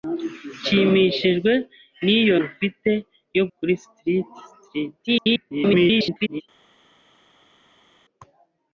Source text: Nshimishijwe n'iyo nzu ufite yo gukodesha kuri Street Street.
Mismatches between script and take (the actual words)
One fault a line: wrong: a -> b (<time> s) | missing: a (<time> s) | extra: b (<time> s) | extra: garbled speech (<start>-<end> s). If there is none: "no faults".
missing: nzu (2.4 s)
missing: gukodesha (3.4 s)
extra: garbled speech (5.1-6.4 s)